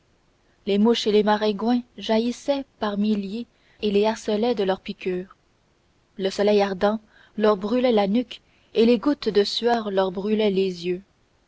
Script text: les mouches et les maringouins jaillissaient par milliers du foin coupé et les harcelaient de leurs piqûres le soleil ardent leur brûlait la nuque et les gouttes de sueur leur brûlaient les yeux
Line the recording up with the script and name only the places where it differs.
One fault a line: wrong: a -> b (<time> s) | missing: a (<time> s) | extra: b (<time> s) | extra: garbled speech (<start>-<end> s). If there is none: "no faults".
missing: du foin coupé (3.5 s)